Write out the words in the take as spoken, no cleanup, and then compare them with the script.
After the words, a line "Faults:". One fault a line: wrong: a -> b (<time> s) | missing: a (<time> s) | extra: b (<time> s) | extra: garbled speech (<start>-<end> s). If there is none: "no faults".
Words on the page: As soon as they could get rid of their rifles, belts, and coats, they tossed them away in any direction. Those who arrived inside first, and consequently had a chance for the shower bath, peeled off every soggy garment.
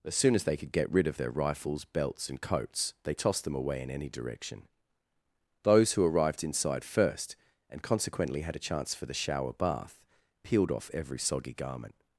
As soon as they could get rid of their rifles, belts, and coats, they tossed them away in any direction. Those who arrived inside first, and consequently had a chance for the shower bath, peeled off every soggy garment.
Faults:
no faults